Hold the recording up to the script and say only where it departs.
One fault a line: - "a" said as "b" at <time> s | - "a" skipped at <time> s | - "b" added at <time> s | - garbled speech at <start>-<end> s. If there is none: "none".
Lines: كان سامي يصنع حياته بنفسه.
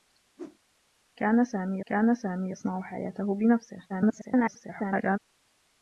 - "كان سامي" added at 1.9 s
- garbled speech at 3.9-5.2 s